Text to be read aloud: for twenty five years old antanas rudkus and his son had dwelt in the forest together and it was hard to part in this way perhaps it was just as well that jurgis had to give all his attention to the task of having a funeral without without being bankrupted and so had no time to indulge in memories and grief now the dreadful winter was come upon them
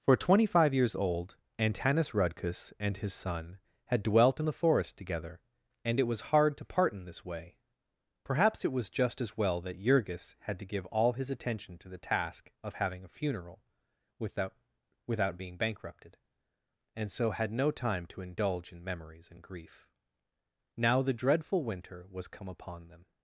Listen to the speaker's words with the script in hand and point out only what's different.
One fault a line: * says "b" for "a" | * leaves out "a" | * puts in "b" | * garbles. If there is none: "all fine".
all fine